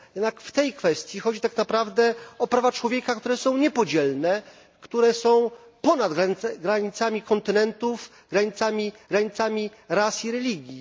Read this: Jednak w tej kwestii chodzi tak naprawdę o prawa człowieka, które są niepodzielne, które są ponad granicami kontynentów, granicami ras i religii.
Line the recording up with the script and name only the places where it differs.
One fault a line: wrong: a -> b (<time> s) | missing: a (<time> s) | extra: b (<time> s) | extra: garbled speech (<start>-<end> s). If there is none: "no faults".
extra: granicami (9.1 s)